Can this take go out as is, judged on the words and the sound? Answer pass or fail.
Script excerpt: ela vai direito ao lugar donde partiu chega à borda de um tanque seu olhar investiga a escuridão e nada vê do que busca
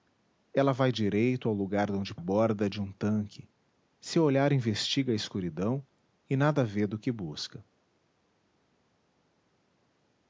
fail